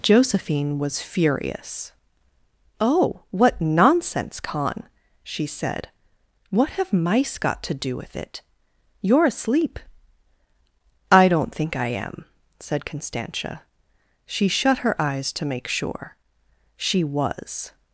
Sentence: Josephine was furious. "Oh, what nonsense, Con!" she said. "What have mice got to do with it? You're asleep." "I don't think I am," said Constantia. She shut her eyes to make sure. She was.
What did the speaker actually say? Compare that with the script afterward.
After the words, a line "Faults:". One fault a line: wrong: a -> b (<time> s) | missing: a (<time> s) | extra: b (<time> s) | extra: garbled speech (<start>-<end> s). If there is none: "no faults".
Josephine was furious. "Oh, what nonsense, Con!" she said. "What have mice got to do with it? You're asleep." "I don't think I am," said Constantia. She shut her eyes to make sure. She was.
Faults:
no faults